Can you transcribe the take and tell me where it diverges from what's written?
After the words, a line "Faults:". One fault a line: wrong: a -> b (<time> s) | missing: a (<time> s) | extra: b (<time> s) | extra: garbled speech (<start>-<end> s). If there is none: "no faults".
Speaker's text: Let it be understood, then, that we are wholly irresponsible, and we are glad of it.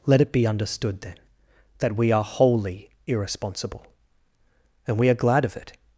Let it be understood, then, that we are wholly irresponsible, and we are glad of it.
Faults:
no faults